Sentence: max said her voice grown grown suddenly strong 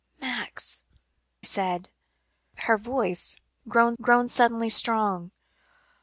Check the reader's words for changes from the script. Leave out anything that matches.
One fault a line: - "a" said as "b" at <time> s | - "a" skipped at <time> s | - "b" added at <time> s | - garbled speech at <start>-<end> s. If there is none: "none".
none